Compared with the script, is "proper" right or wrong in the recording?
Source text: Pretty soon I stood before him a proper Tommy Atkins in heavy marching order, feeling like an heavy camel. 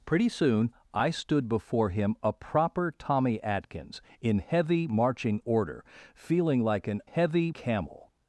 right